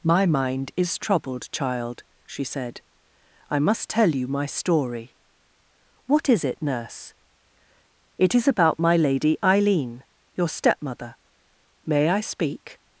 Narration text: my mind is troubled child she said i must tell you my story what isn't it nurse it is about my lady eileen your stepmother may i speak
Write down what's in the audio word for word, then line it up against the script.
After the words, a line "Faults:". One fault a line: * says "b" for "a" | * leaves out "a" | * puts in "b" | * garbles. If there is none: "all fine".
my mind is troubled child she said i must tell you my story what is it nurse it is about my lady eileen your stepmother may i speak
Faults:
* says "is" for "isn't"